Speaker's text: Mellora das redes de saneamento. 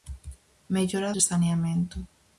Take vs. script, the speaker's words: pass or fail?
fail